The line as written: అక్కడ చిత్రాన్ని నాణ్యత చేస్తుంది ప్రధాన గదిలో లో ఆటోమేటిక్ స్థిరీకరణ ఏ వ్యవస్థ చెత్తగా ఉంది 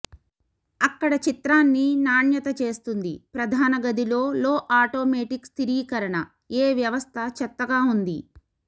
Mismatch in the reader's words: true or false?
false